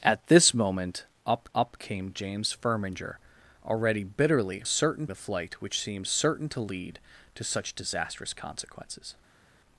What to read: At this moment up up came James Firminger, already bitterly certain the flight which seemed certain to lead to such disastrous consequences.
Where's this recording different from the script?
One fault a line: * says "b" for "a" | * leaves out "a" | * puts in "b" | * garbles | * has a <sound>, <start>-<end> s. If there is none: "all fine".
all fine